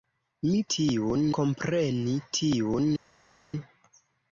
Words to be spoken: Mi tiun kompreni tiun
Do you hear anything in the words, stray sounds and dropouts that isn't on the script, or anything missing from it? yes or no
no